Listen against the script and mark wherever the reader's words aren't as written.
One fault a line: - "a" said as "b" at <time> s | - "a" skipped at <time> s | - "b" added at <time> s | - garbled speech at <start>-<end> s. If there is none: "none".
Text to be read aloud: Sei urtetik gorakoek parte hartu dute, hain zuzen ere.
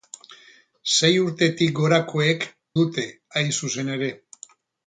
- "parte hartu" skipped at 2.5 s